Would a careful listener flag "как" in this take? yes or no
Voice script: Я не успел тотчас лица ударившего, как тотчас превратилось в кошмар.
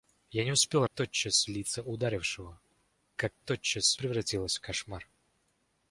no